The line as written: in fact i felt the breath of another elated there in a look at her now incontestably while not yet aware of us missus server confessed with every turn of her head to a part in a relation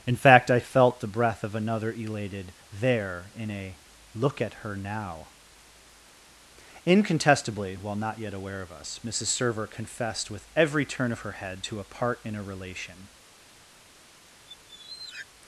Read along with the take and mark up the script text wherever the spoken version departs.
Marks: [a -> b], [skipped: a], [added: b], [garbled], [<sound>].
in fact i felt the breath of another elated there in a look at her now incontestably while not yet aware of us missus server confessed with every turn of her head to a part in a relation [squeak]